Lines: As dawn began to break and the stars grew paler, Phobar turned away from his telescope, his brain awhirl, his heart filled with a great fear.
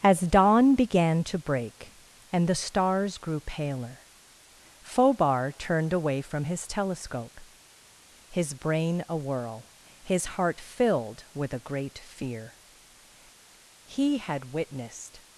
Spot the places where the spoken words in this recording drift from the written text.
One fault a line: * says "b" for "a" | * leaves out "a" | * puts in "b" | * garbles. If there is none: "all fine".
* puts in "He had witnessed"